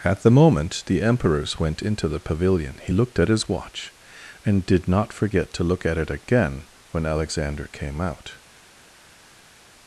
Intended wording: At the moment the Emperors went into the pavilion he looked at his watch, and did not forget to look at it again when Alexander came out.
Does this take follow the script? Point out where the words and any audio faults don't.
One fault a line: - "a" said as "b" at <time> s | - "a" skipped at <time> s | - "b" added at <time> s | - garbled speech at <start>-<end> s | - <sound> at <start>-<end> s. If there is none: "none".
none